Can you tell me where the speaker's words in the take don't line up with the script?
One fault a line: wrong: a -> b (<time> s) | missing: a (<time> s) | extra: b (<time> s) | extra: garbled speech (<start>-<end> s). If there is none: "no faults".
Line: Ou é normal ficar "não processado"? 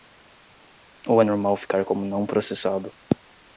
extra: como (1.8 s)